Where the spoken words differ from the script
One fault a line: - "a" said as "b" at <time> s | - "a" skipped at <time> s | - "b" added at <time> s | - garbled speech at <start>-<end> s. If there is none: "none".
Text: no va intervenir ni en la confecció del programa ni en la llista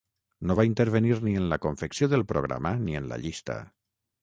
none